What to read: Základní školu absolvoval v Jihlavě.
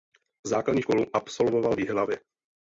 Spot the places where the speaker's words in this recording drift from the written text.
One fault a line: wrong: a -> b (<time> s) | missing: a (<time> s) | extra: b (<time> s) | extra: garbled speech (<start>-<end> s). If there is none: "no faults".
no faults